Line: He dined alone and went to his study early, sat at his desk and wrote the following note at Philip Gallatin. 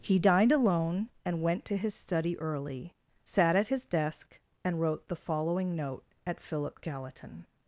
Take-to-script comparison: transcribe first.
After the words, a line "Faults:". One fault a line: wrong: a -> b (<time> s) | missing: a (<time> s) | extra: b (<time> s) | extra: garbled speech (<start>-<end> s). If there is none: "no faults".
He dined alone and went to his study early, sat at his desk and wrote the following note at Philip Gallatin.
Faults:
no faults